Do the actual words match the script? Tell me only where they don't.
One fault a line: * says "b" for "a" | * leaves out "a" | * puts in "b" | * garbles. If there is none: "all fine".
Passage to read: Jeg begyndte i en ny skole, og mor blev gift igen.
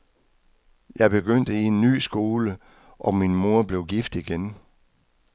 * puts in "min"